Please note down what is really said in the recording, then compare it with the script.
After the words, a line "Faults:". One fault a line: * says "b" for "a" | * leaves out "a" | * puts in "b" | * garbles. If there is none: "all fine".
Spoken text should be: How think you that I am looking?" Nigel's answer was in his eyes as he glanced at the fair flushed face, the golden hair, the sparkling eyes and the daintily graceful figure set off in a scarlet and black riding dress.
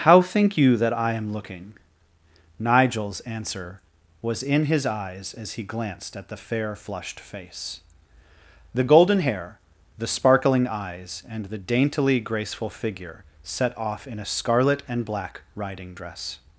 How think you that I am looking?" Nigel's answer was in his eyes as he glanced at the fair flushed face, the golden hair, the sparkling eyes and the daintily graceful figure set off in a scarlet and black riding dress.
Faults:
all fine